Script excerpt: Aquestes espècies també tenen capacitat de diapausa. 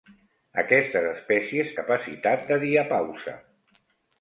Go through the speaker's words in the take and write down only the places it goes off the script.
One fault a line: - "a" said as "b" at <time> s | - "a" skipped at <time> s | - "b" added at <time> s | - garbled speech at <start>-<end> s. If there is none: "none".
- "també tenen" skipped at 1.8 s